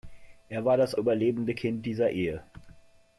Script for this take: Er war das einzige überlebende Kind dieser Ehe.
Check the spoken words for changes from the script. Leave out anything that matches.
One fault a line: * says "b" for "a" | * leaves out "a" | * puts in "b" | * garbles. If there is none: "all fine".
* leaves out "einzige"